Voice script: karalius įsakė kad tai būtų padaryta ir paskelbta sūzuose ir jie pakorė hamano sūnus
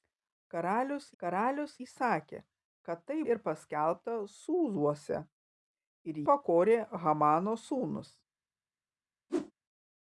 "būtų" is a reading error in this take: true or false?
true